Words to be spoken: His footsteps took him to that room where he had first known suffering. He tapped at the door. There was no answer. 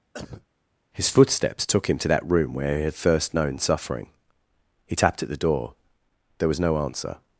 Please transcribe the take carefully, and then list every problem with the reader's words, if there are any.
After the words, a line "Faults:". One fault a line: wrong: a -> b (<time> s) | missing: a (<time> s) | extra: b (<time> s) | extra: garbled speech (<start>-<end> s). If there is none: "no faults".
His footsteps took him to that room where he had first known suffering. He tapped at the door. There was no answer.
Faults:
no faults